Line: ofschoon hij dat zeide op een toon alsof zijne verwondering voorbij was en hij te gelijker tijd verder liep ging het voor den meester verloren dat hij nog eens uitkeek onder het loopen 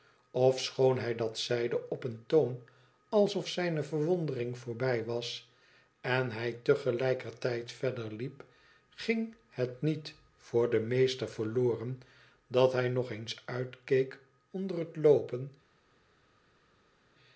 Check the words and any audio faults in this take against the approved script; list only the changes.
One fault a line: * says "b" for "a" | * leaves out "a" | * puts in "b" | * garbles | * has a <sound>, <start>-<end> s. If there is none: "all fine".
* puts in "niet"